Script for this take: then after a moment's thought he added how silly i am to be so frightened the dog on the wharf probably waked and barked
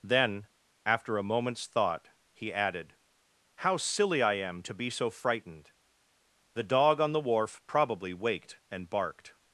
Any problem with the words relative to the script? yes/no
no